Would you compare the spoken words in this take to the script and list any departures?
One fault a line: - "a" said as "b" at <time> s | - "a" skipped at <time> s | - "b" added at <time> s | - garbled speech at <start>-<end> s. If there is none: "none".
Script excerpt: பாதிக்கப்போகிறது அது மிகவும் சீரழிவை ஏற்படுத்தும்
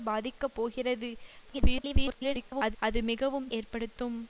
- garbled speech at 1.4-2.8 s
- "சீரழிவை" skipped at 3.5 s